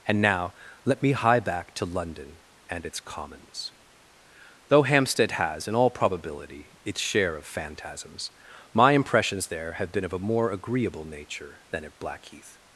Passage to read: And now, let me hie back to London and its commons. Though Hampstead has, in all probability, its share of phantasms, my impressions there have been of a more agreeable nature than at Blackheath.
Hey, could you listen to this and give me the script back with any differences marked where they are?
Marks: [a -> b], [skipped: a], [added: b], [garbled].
And now, let me hie back to London and its commons. Though Hampstead has, in all probability, its share of phantasms, my impressions there have been of a more agreeable nature than at Blackheath.